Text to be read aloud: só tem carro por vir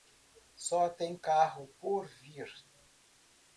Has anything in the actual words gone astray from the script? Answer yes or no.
no